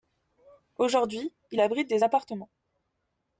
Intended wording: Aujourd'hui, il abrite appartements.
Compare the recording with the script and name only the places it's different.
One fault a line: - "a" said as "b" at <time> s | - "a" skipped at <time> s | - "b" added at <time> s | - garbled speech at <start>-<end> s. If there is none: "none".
- "des" added at 1.9 s